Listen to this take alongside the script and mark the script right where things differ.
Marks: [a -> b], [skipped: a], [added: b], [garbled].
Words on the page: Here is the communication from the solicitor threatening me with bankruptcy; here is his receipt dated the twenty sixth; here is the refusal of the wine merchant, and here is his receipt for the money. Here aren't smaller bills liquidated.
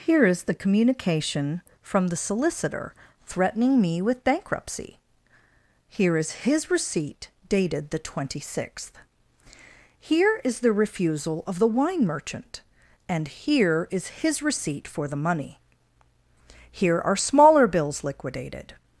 Here is the communication from the solicitor threatening me with bankruptcy; here is his receipt dated the twenty sixth; here is the refusal of the wine merchant, and here is his receipt for the money. Here [aren't -> are] smaller bills liquidated.